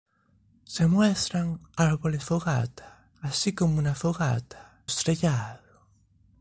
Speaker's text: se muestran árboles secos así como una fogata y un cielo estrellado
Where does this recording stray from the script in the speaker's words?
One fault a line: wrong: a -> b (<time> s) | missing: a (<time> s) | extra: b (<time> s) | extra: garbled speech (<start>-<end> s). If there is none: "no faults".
wrong: secos -> fogata (2.2 s)
missing: y un cielo (4.8 s)